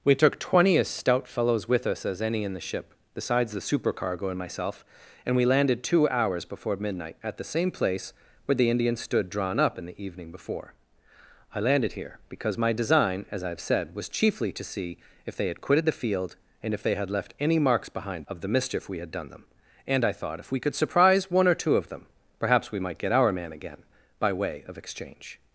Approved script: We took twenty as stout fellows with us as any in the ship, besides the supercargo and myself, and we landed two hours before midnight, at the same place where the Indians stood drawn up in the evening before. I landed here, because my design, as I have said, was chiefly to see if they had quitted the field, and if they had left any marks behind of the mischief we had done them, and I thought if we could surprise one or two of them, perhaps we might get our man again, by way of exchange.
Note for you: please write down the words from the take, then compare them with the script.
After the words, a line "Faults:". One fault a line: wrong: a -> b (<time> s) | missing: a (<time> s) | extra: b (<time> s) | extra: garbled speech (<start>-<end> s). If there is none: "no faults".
We took twenty as stout fellows with us as any in the ship, besides the supercargo and myself, and we landed two hours before midnight, at the same place where the Indians stood drawn up in the evening before. I landed here, because my design, as I have said, was chiefly to see if they had quitted the field, and if they had left any marks behind of the mischief we had done them, and I thought if we could surprise one or two of them, perhaps we might get our man again, by way of exchange.
Faults:
no faults